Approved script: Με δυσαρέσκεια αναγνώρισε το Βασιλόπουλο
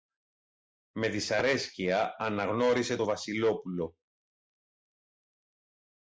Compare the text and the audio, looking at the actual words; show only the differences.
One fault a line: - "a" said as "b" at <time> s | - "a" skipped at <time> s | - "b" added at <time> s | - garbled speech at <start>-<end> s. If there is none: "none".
none